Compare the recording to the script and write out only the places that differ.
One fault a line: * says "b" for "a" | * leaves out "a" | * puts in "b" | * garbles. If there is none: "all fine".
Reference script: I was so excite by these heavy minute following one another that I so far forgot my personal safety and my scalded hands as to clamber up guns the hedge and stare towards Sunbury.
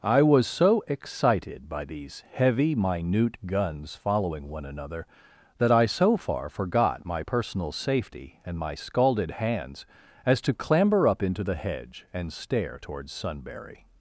* says "excited" for "excite"
* puts in "guns"
* says "into" for "guns"